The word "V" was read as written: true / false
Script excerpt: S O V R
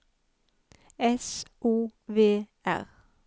true